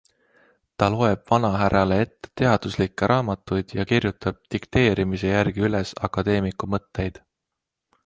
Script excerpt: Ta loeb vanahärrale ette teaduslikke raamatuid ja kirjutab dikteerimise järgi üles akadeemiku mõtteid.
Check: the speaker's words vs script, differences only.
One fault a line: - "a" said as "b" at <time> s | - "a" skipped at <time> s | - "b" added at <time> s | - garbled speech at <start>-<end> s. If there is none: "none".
none